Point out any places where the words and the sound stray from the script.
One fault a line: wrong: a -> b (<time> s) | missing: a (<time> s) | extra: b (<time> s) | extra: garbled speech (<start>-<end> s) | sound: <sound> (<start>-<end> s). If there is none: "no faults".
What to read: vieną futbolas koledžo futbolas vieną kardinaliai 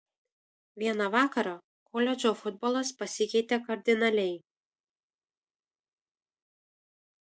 wrong: futbolas -> vakarą (1.1 s)
wrong: vieną -> pasikeitė (3.0 s)